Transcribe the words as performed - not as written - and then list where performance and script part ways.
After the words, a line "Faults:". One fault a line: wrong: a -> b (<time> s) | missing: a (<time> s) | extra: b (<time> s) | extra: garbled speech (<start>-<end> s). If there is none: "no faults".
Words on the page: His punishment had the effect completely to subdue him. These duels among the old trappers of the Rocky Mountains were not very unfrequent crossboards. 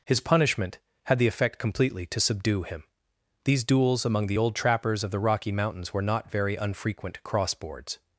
His punishment had the effect completely to subdue him. These duels among the old trappers of the Rocky Mountains were not very unfrequent crossboards.
Faults:
no faults